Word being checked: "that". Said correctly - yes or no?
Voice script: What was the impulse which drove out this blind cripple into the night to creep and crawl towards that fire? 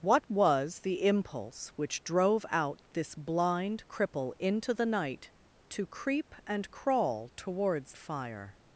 no